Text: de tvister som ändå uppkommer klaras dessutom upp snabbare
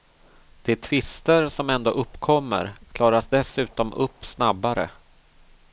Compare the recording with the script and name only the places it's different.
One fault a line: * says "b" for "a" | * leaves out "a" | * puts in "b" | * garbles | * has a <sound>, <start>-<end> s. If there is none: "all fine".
all fine